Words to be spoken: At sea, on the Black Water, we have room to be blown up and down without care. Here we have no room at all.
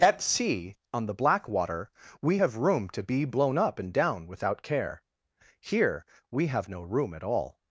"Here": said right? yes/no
yes